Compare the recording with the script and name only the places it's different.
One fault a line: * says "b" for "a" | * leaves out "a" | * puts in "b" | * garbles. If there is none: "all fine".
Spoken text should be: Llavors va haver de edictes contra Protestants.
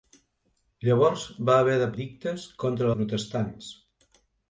all fine